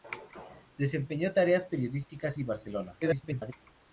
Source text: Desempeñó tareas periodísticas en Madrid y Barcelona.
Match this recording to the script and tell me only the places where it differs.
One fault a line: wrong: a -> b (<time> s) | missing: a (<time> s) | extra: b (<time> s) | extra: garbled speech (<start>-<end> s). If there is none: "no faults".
missing: en Madrid (2.4 s)
extra: garbled speech (3.0-3.5 s)